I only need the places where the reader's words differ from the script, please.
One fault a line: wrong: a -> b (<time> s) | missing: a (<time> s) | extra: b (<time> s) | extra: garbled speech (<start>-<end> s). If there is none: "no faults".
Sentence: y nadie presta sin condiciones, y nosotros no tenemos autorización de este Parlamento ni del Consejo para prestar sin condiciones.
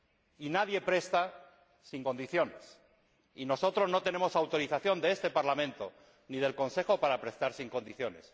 no faults